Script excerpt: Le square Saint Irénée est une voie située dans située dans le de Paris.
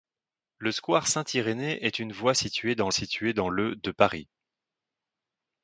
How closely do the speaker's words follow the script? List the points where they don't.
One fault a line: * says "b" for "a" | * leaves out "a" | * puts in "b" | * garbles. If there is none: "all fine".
all fine